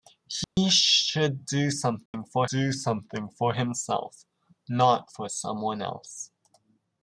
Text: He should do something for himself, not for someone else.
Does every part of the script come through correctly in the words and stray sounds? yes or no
no